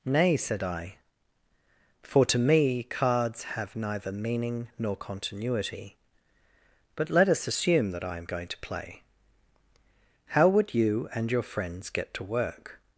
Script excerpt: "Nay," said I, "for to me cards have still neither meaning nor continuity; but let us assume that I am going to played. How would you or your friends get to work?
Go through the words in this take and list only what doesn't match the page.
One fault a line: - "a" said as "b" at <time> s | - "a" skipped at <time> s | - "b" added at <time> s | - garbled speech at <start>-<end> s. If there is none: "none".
- "still" skipped at 3.8 s
- "played" said as "play" at 8.6 s
- "or" said as "and" at 11.1 s